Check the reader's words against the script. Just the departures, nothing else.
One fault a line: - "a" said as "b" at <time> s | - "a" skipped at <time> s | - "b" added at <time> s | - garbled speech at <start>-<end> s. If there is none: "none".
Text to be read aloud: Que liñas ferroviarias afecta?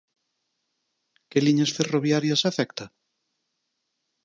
none